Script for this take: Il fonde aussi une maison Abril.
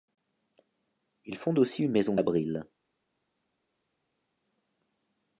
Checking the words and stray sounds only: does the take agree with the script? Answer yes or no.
yes